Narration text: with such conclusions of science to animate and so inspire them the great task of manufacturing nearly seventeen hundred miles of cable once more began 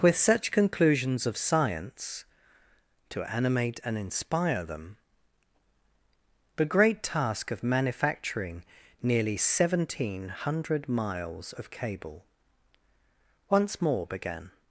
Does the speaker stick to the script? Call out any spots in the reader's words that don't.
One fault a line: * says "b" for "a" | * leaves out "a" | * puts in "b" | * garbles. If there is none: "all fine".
* leaves out "so"